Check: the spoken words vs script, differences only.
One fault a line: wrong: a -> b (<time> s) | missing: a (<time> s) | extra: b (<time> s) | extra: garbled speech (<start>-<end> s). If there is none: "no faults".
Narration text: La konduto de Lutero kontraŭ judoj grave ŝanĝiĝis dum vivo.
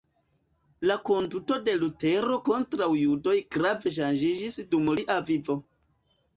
extra: lia (5.0 s)